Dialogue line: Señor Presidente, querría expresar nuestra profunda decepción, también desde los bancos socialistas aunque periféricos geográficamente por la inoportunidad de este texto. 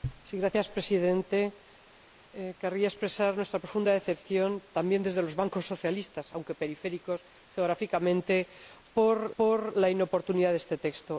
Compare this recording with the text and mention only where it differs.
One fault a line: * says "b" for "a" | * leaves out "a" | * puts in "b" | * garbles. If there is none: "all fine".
* puts in "por"